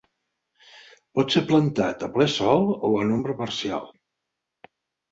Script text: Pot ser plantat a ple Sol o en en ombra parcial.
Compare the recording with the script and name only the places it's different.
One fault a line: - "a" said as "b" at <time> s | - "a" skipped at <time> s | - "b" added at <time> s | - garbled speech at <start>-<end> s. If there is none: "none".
- "en" skipped at 3.1 s